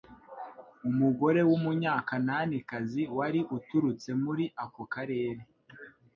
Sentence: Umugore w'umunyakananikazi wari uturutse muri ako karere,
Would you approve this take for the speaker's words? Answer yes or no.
yes